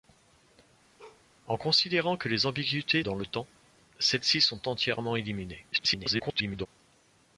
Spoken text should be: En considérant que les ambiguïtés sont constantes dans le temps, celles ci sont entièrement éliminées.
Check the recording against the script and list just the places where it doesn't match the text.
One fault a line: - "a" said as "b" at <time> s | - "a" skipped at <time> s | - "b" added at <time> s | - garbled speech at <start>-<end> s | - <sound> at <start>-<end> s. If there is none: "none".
- bark at 1.0-1.2 s
- "sont constantes" skipped at 3.0 s
- garbled speech at 5.7-6.7 s